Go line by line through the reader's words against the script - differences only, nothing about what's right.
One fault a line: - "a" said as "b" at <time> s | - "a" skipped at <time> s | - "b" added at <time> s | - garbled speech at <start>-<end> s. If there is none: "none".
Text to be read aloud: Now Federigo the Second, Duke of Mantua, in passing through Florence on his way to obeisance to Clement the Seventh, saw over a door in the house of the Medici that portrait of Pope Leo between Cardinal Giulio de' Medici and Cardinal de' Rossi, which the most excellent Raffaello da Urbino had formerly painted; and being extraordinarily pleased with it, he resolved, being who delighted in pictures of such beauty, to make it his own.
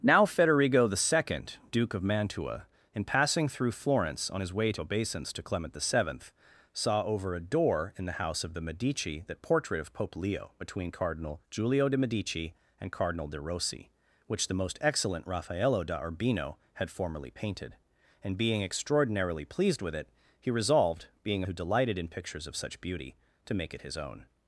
none